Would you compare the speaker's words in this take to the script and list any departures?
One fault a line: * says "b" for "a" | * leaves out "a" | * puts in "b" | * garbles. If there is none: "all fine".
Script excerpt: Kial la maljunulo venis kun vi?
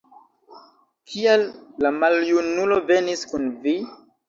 all fine